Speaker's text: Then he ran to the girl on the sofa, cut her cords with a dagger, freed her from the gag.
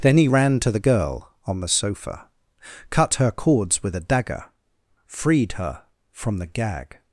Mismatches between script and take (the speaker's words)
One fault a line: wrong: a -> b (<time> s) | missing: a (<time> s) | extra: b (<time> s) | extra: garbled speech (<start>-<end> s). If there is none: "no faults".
no faults